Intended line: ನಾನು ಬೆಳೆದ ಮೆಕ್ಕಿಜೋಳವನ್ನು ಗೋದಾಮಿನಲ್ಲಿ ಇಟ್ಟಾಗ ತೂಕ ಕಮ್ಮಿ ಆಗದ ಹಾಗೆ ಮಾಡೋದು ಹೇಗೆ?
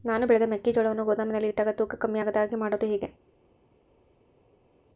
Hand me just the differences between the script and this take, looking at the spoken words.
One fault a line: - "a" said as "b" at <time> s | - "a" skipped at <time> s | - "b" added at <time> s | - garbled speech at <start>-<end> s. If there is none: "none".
none